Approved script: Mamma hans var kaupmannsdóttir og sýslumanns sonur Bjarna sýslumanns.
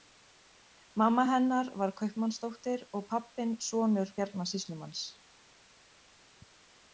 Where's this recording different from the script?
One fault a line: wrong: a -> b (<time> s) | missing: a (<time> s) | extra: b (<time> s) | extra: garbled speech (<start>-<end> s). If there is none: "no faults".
wrong: hans -> hennar (1.3 s)
wrong: sýslumanns -> pabbinn (3.1 s)